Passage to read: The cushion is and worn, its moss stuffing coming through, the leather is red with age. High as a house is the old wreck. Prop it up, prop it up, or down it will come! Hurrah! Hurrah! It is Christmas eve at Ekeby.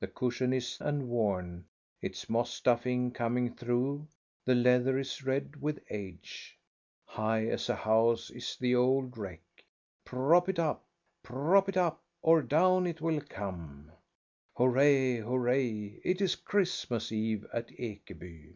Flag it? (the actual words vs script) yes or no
no